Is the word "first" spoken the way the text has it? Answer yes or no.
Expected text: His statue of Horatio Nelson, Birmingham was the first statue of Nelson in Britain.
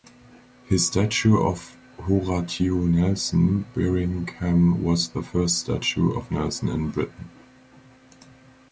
yes